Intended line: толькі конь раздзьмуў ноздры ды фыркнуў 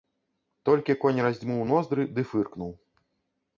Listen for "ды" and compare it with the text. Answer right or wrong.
right